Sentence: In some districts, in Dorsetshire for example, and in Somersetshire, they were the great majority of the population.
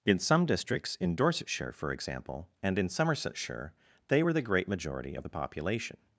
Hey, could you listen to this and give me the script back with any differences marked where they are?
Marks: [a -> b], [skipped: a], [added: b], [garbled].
In some districts, in Dorsetshire for example, and in Somersetshire, they were the great majority of the population.